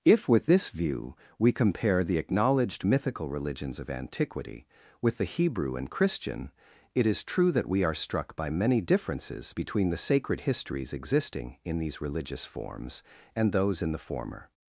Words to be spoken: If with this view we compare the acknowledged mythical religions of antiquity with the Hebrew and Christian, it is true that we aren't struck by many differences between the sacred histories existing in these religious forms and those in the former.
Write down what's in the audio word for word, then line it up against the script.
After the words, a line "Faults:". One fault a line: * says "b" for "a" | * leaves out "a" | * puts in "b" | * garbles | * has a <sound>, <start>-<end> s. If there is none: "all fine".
If with this view we compare the acknowledged mythical religions of antiquity with the Hebrew and Christian, it is true that we are struck by many differences between the sacred histories existing in these religious forms and those in the former.
Faults:
* says "are" for "aren't"